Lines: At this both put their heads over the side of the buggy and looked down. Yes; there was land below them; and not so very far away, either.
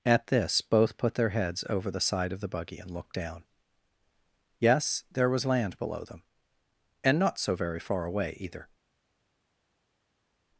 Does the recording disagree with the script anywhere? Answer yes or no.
no